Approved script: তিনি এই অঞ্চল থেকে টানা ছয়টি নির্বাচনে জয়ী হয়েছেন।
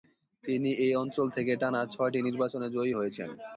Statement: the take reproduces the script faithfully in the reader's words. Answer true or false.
true